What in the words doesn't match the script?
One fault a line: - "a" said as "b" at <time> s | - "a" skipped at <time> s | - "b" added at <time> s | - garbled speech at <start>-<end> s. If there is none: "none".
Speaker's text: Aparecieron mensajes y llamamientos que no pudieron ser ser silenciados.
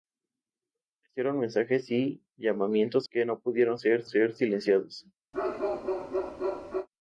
none